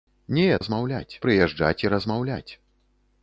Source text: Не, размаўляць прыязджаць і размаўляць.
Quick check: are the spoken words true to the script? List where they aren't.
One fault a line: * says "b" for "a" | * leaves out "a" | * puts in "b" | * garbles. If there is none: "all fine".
all fine